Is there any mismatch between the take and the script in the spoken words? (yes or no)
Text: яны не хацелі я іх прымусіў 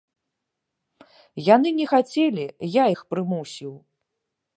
no